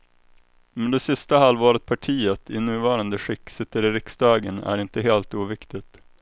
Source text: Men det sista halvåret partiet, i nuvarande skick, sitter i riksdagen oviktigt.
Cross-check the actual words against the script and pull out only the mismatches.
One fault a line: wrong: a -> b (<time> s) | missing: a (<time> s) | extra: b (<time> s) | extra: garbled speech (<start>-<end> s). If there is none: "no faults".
extra: är inte helt (4.6 s)